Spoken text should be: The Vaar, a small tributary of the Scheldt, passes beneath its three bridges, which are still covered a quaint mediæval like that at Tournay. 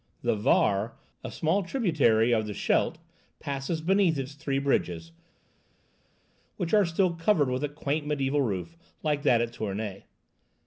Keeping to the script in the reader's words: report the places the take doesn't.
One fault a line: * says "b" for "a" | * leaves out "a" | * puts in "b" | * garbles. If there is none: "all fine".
* puts in "with"
* puts in "roof"